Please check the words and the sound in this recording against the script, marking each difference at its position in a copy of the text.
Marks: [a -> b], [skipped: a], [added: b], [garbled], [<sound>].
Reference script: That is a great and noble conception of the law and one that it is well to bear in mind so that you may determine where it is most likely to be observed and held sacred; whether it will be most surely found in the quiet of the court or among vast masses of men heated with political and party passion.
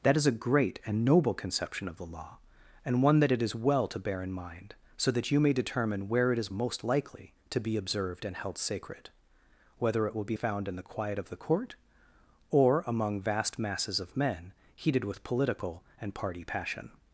That is a great and noble conception of the law and one that it is well to bear in mind so that you may determine where it is most likely to be observed and held sacred; whether it will be [skipped: most surely] found in the quiet of the court or among vast masses of men heated with political and party passion.